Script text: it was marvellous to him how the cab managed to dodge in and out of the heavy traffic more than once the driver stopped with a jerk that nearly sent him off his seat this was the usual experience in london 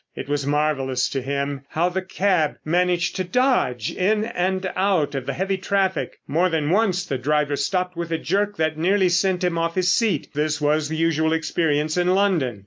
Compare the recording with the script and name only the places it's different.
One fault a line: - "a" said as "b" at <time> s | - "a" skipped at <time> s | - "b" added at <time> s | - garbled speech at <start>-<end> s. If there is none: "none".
none